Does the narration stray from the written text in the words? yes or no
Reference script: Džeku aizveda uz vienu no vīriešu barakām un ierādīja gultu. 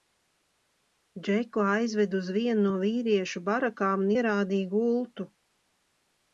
no